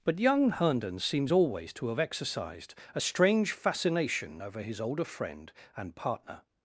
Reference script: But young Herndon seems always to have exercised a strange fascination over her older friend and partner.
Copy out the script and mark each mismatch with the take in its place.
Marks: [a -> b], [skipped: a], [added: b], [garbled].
But young Herndon seems always to have exercised a strange fascination over [her -> his] older friend and partner.